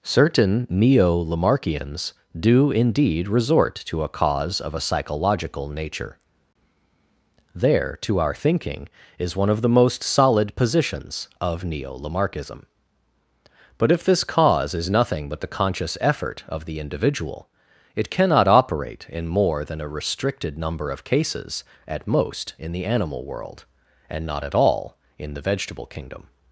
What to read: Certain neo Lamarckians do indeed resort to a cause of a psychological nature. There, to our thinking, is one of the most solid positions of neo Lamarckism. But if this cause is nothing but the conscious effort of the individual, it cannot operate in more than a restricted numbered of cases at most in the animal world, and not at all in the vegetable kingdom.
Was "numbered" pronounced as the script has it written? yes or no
no